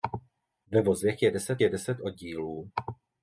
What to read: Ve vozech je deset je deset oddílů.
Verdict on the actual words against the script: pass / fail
pass